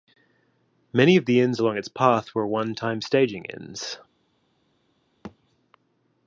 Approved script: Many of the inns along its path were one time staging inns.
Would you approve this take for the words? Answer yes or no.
yes